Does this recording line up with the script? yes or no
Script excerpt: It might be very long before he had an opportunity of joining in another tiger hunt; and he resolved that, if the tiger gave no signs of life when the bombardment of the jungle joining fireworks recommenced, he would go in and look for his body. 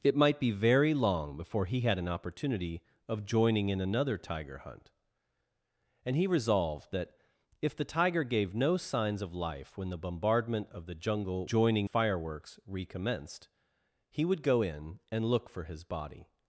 yes